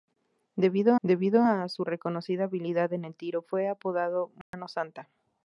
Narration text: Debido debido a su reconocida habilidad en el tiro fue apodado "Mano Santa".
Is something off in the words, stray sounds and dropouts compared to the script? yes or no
yes